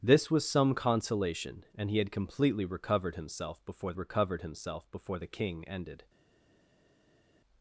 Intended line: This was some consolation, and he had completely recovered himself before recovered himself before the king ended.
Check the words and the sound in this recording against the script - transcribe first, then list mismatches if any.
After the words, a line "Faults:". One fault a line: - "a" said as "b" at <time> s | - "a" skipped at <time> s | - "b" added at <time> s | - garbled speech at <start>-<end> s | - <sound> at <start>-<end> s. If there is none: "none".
This was some consolation, and he had completely recovered himself before recovered himself before the king ended.
Faults:
none